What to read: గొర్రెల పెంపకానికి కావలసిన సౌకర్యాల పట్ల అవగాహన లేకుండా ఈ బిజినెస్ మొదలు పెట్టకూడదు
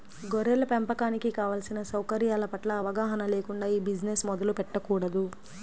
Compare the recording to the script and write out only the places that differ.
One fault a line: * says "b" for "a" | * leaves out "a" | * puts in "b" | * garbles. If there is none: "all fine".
all fine